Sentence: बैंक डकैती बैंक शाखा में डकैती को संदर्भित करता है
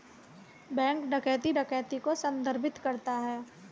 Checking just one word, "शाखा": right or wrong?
wrong